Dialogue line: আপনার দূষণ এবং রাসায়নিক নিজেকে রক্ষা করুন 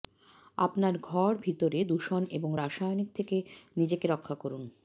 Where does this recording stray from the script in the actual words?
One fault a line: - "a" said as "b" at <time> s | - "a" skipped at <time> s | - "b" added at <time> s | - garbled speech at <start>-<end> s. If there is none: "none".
- "ঘর ভিতরে" added at 1.0 s
- "থেকে" added at 3.1 s